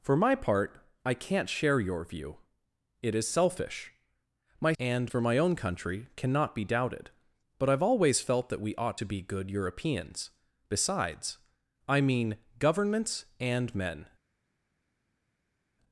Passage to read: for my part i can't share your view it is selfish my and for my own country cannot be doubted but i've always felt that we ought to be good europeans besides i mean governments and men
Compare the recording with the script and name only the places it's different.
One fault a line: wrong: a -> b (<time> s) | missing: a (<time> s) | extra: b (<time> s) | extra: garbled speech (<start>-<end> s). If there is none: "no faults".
no faults